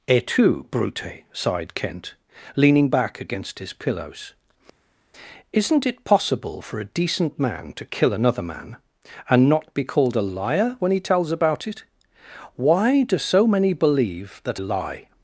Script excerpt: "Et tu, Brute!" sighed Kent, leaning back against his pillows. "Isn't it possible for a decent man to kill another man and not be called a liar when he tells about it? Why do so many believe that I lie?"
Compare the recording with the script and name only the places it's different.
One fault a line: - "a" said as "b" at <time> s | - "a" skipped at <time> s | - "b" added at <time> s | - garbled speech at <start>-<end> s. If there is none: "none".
- "I" skipped at 14.6 s